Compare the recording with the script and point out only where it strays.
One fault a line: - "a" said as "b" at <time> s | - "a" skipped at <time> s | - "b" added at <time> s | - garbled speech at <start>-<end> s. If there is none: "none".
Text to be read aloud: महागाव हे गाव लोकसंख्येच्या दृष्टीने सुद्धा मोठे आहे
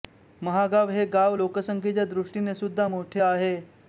none